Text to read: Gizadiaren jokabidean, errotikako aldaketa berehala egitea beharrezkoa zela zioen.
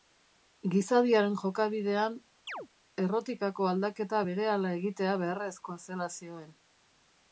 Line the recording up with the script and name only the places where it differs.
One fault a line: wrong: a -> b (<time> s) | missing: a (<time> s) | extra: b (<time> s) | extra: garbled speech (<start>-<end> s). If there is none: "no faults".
no faults